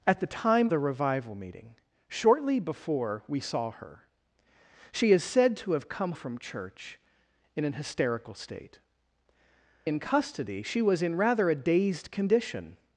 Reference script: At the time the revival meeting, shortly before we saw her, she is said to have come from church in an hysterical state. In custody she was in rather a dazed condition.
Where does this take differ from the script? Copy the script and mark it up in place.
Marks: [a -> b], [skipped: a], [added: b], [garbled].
At the time the revival meeting, shortly before we saw her, she is said to have come from church in an hysterical state. In custody she was in rather a dazed condition.